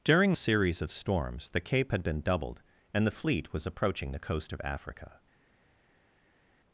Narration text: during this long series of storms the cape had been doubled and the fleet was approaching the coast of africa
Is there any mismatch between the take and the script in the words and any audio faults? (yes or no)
yes